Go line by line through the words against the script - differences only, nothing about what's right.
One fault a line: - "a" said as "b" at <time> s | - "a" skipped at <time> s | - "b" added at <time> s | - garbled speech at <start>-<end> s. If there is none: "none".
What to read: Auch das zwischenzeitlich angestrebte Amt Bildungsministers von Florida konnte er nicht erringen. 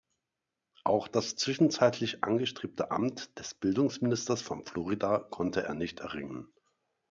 - "des" added at 3.4 s